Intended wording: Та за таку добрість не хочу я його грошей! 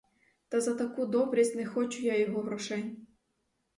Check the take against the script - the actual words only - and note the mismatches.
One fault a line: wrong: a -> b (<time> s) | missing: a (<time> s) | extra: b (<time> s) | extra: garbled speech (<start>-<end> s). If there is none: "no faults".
no faults